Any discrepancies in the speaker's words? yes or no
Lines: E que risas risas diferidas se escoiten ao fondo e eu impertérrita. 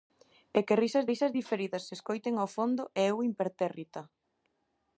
no